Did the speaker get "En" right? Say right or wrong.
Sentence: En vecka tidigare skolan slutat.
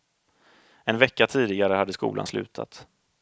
right